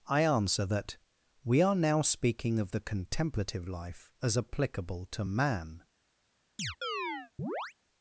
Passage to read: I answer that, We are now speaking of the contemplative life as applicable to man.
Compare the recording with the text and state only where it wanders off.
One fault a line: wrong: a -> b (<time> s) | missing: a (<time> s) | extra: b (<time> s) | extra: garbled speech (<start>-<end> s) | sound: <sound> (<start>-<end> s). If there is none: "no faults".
sound: chirp (6.6-7.7 s)